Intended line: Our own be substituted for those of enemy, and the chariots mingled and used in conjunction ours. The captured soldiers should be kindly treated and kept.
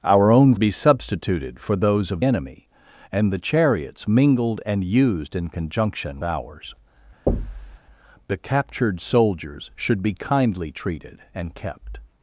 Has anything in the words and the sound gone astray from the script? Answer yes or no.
yes